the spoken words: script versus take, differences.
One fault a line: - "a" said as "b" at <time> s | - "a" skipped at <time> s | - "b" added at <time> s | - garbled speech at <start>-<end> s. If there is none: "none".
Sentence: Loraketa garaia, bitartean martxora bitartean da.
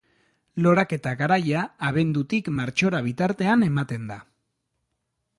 - "bitartean" said as "abendutik" at 1.9 s
- "ematen" added at 3.7 s